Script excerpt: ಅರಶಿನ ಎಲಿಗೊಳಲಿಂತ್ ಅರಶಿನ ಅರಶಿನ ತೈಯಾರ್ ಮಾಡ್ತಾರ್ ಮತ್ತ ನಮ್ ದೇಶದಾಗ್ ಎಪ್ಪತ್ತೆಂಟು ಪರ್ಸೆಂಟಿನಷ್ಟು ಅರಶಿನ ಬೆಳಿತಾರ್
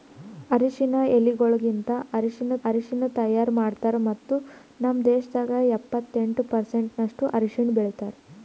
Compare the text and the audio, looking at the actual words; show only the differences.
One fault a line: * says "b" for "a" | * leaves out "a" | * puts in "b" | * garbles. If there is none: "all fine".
all fine